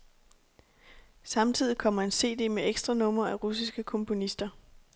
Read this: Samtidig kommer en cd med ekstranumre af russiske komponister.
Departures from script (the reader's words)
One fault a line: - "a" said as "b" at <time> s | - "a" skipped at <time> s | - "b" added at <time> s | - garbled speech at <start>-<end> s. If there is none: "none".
none